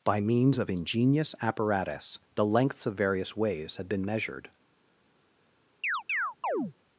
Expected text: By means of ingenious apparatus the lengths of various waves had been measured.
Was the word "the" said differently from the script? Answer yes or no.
no